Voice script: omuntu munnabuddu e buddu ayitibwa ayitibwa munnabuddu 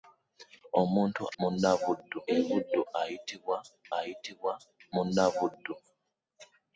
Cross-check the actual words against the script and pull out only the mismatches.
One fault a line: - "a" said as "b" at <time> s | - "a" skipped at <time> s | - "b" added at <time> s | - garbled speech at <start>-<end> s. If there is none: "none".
none